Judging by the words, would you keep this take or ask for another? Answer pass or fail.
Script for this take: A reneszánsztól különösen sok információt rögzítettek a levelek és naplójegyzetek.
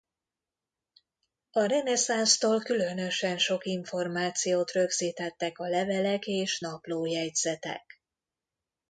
pass